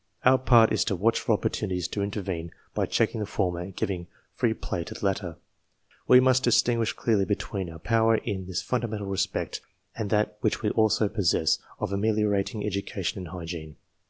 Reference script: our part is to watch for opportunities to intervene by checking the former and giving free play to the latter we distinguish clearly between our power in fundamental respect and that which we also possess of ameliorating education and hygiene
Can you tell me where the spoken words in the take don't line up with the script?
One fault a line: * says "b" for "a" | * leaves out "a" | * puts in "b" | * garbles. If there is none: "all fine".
* puts in "must"
* puts in "this"